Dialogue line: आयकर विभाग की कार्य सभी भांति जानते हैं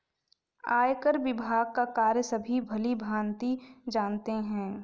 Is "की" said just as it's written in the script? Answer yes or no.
no